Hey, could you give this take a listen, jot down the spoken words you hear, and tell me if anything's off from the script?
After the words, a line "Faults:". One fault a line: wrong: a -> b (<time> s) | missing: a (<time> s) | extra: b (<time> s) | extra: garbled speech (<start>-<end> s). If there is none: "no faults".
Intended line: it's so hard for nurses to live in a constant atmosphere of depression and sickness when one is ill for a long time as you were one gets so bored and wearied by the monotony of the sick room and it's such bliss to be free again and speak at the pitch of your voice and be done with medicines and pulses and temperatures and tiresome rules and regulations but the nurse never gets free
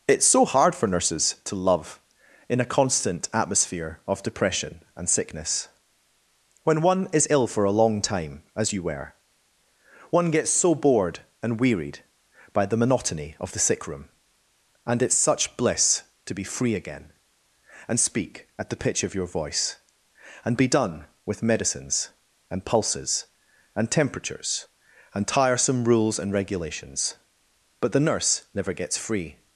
it's so hard for nurses to love in a constant atmosphere of depression and sickness when one is ill for a long time as you were one gets so bored and wearied by the monotony of the sick room and it's such bliss to be free again and speak at the pitch of your voice and be done with medicines and pulses and temperatures and tiresome rules and regulations but the nurse never gets free
Faults:
wrong: live -> love (1.6 s)